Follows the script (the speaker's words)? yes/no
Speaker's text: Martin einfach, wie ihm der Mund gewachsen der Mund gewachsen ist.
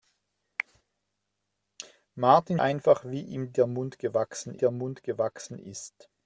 yes